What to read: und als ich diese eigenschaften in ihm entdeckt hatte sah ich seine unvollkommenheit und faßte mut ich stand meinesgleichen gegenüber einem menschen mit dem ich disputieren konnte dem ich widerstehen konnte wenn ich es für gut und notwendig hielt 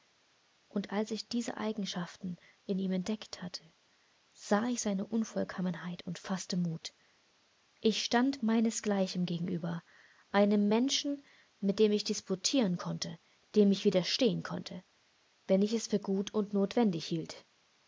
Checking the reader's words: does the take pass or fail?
pass